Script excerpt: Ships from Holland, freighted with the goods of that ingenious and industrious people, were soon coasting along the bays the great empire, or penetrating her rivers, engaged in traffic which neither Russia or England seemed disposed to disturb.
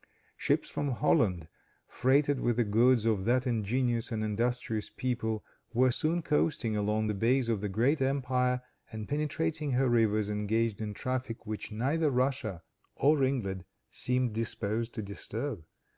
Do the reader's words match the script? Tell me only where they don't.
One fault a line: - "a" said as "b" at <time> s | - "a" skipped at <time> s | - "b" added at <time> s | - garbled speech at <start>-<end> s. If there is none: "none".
- "of" added at 7.5 s
- "or" said as "and" at 8.9 s